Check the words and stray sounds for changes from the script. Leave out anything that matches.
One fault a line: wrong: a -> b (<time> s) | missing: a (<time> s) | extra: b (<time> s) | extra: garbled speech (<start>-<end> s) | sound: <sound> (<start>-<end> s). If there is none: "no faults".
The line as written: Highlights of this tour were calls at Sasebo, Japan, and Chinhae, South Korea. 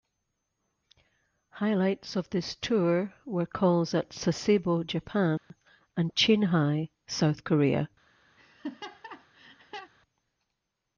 sound: dropout (5.4-5.5 s)
sound: laugh (8.4-9.9 s)